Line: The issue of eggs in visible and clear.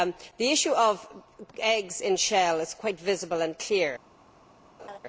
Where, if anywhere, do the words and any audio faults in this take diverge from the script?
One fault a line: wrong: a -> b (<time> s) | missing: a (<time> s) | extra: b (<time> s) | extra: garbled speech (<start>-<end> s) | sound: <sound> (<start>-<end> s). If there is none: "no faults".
extra: shell is quite (2.2 s)
sound: laugh (4.8-5.0 s)